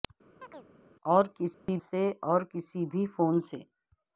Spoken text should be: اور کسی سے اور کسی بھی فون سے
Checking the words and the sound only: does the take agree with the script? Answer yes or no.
no